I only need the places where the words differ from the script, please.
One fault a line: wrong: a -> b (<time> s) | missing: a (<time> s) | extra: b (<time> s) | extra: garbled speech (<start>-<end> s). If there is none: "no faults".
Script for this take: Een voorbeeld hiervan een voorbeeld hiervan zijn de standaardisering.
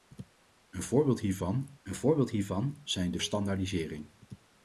no faults